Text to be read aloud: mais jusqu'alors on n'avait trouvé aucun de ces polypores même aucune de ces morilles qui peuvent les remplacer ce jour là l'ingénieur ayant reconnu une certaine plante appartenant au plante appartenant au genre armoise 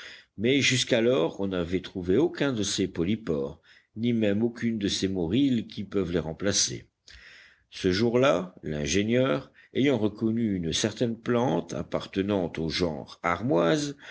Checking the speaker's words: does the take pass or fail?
fail